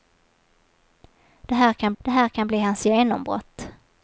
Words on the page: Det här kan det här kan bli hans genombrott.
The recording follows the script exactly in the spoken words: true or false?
true